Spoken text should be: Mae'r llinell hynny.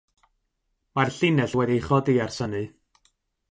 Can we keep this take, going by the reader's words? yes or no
no